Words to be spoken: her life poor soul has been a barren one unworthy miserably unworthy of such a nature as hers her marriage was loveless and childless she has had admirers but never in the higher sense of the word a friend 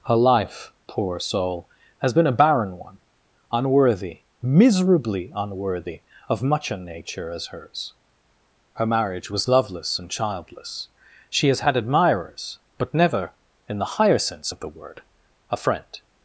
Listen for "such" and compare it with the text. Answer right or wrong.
wrong